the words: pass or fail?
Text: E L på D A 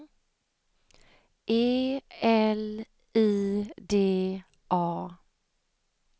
fail